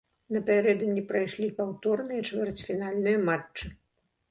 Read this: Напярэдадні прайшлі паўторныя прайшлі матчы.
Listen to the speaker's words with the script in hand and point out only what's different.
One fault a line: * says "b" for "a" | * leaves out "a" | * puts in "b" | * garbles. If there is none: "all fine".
* says "чвэрцьфінальныя" for "прайшлі"